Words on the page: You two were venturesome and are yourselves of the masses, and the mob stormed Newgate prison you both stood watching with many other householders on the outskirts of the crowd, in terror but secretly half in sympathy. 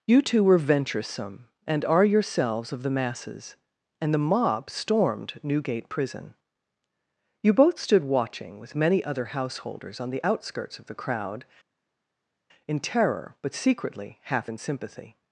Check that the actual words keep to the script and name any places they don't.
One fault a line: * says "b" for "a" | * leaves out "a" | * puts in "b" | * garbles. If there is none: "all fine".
all fine